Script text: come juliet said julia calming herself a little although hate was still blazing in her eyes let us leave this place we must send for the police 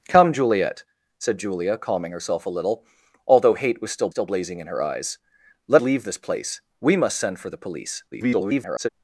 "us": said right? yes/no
no